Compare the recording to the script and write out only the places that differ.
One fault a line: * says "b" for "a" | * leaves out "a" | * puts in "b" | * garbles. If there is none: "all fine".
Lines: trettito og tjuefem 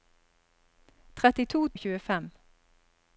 all fine